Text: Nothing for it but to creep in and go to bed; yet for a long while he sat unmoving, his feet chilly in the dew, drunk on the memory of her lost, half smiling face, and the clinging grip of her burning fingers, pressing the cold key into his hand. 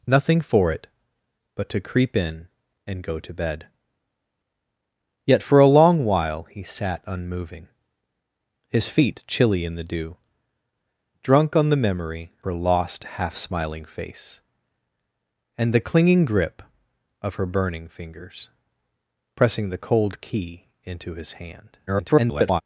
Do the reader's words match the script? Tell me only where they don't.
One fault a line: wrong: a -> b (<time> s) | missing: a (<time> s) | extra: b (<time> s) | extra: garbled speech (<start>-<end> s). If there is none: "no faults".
missing: of (12.3 s)
extra: garbled speech (21.9-22.6 s)